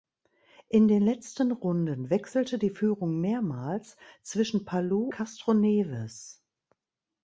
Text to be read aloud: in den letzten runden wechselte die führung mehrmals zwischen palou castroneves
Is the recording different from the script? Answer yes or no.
no